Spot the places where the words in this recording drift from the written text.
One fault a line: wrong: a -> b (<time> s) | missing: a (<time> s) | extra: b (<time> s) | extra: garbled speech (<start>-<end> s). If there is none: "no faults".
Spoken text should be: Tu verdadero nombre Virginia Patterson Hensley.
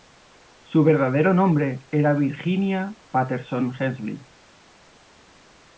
wrong: Tu -> Su (0.6 s)
extra: era (1.9 s)